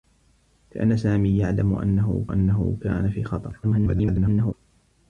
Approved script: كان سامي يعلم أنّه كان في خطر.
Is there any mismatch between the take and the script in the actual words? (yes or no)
yes